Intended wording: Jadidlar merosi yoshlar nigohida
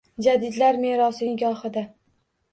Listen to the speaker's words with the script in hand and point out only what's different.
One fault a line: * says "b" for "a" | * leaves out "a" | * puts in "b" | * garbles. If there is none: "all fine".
* leaves out "yoshlar"